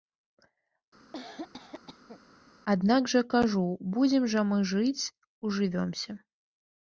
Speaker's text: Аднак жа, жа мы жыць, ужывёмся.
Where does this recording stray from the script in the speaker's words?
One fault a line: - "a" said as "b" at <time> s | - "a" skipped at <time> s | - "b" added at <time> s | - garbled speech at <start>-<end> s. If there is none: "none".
- "кажу будзем" added at 3.4 s